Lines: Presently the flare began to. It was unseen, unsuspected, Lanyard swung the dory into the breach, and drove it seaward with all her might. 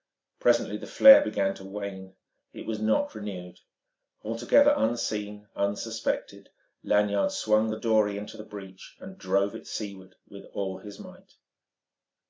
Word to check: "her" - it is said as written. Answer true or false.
false